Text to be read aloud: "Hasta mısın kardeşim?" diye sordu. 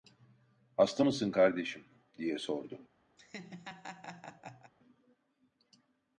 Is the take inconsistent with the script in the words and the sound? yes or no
yes